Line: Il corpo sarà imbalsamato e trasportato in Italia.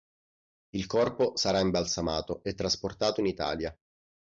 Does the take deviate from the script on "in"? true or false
false